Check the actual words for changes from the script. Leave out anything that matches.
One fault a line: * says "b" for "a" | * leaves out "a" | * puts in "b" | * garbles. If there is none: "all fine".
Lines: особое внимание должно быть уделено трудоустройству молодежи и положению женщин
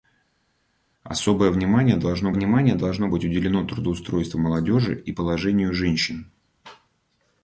* puts in "внимание должно"